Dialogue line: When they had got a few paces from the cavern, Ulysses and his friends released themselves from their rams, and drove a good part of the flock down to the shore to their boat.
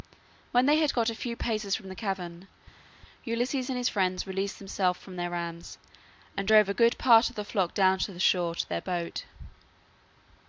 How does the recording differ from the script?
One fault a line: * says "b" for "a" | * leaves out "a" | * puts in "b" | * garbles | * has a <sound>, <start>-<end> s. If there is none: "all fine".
all fine